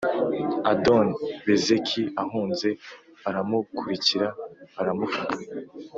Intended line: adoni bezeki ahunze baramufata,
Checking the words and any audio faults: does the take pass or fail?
fail